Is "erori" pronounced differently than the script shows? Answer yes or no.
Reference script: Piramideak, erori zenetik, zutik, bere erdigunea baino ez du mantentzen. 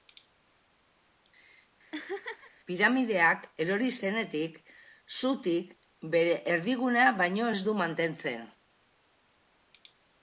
no